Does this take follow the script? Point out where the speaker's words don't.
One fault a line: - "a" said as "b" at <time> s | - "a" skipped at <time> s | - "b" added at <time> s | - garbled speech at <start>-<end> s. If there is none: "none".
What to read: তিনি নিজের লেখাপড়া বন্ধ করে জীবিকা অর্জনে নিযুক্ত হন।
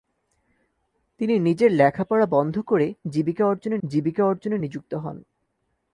- "জীবিকা অর্জনে" added at 3.9 s